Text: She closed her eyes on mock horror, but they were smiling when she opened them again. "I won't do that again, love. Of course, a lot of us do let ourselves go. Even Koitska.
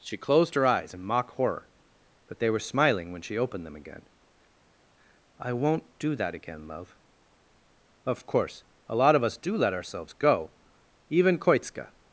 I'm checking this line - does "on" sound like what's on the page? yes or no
no